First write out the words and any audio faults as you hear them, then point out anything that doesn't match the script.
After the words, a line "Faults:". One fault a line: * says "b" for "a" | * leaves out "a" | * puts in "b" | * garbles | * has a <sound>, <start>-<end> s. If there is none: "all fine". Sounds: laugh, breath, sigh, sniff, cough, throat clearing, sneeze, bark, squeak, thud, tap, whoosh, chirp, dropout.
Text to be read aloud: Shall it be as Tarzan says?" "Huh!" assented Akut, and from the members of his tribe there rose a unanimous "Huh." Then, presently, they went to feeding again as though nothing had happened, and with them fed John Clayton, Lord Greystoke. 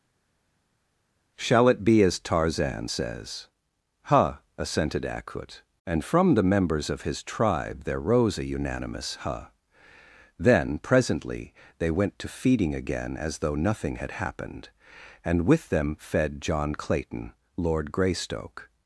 Shall it be as Tarzan says?" "Huh!" assented Akut, and from the members of his tribe there rose a unanimous "Huh." Then, presently, they went to feeding again as though nothing had happened, and with them fed John Clayton, Lord Greystoke.
Faults:
all fine